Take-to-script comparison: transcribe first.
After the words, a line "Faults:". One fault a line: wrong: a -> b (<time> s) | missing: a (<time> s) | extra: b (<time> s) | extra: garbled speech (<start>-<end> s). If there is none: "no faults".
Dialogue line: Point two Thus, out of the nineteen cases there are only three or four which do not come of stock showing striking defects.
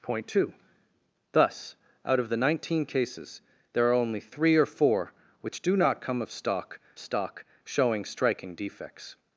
Point two Thus, out of the nineteen cases there are only three or four which do not come of stock stock showing striking defects.
Faults:
extra: stock (7.0 s)